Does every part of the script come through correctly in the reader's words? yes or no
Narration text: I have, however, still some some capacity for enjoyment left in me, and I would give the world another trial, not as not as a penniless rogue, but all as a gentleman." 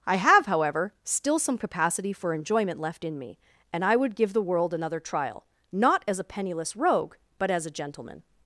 no